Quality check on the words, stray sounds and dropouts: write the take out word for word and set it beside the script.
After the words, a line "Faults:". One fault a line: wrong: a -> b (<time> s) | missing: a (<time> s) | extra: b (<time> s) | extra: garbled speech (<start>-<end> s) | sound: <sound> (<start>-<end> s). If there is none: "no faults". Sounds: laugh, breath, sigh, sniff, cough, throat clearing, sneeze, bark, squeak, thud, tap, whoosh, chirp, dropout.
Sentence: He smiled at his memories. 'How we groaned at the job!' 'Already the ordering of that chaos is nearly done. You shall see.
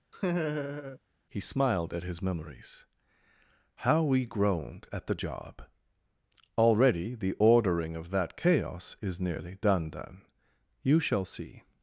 He smiled at his memories. 'How we groaned at the job!' 'Already the ordering of that chaos is nearly done done. You shall see.
Faults:
sound: laugh (0.1-1.0 s)
extra: done (9.9 s)